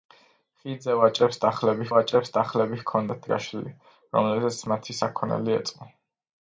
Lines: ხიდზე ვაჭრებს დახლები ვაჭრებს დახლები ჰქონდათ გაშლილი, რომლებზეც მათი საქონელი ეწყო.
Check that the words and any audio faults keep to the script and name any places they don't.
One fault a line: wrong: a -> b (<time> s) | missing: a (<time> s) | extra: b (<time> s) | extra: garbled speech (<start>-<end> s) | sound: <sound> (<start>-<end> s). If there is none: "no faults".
no faults